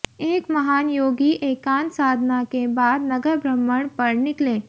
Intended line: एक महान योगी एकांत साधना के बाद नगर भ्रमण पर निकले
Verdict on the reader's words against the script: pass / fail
pass